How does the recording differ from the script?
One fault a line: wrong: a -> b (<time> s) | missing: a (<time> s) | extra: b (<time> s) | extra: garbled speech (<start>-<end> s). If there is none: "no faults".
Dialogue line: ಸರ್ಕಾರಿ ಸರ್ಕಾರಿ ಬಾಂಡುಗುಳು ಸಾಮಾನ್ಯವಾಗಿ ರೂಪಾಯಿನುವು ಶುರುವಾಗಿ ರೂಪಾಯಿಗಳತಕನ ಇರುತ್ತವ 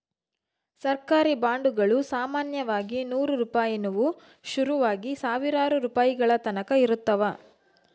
missing: ಸರ್ಕಾರಿ (1.4 s)
extra: ನೂರು (3.0 s)
extra: ಸಾವಿರಾರು (5.1 s)